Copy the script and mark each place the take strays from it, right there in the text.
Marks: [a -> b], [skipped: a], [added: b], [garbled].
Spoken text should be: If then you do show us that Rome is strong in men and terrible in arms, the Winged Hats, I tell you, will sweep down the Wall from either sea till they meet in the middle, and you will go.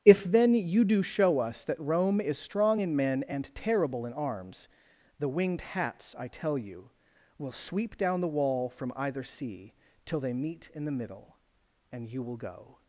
If then you do show us that Rome is strong in men and terrible in arms, the Winged Hats, I tell you, will sweep down the Wall from either sea till they meet in the middle, and you will go.